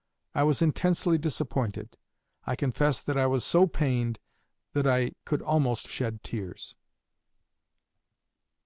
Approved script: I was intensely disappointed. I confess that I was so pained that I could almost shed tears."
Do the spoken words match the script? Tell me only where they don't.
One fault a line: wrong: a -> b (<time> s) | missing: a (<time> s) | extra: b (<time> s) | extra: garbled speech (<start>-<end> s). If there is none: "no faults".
no faults